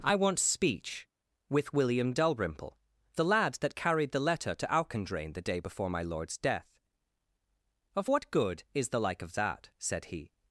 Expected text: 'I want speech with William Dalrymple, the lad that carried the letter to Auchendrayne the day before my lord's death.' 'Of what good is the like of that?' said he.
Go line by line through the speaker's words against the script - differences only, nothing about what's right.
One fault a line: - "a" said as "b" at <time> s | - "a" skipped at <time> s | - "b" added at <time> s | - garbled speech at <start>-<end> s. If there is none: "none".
none